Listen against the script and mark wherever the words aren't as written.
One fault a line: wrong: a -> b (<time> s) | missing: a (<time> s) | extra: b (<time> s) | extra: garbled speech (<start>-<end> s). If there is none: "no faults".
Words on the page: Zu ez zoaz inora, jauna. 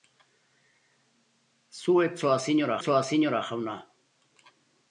extra: zoaz inora (2.8 s)